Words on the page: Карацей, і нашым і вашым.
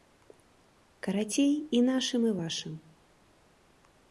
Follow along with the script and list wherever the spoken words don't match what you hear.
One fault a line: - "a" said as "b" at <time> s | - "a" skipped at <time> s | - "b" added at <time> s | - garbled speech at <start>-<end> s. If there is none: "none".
none